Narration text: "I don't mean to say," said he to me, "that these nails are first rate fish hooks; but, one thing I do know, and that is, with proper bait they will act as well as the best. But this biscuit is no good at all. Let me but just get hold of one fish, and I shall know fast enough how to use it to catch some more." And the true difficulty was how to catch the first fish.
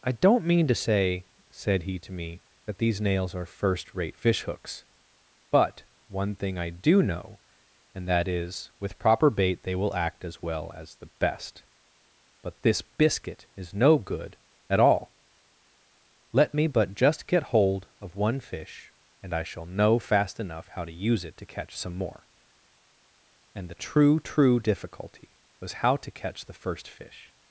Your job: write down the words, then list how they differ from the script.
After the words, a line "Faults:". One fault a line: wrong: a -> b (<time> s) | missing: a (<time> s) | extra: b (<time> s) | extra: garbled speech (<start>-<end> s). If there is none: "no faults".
"I don't mean to say," said he to me, "that these nails are first rate fish hooks; but, one thing I do know, and that is, with proper bait they will act as well as the best. But this biscuit is no good at all. Let me but just get hold of one fish, and I shall know fast enough how to use it to catch some more." And the true true difficulty was how to catch the first fish.
Faults:
extra: true (24.2 s)